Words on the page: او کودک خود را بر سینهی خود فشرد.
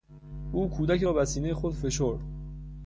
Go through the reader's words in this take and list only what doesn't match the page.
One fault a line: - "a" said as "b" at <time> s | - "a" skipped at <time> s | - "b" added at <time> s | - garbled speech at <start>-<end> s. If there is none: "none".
- "خود" skipped at 1.1 s